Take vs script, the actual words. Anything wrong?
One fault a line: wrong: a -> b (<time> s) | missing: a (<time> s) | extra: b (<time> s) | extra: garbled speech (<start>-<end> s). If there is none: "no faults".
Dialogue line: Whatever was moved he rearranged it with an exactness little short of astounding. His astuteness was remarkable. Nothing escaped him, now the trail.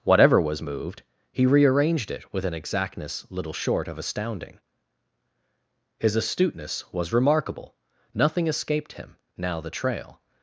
no faults